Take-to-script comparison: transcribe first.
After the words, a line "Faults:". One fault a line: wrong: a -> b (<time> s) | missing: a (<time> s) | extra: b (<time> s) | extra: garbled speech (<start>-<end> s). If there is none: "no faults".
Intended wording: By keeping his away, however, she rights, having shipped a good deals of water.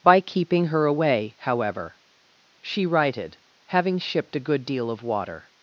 By keeping her away, however, she righted, having shipped a good deal of water.
Faults:
wrong: his -> her (0.7 s)
wrong: rights -> righted (2.9 s)
wrong: deals -> deal (4.6 s)